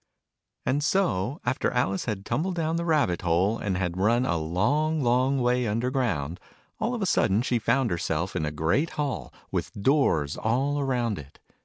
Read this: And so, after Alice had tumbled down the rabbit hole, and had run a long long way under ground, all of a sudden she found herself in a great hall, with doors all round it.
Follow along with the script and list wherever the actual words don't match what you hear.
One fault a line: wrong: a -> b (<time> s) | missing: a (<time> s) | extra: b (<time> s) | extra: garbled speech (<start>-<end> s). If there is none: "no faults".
no faults